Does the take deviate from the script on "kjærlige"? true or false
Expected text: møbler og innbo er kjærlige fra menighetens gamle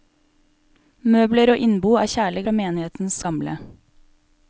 false